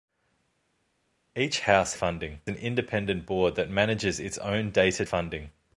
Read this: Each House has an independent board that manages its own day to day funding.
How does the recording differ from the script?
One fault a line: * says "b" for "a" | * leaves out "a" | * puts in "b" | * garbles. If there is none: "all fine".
* says "funding" for "has"
* leaves out "day"